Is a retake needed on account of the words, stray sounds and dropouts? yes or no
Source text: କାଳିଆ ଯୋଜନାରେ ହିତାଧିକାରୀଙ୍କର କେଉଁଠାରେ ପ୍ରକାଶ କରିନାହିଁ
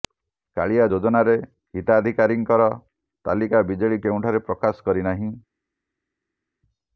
yes